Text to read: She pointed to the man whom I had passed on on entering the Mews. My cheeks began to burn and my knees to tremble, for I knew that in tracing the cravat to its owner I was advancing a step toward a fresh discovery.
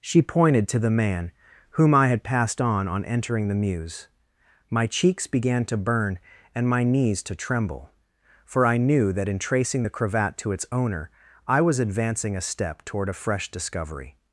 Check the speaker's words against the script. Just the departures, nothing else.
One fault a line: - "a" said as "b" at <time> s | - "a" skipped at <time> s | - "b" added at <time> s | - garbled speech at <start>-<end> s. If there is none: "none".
none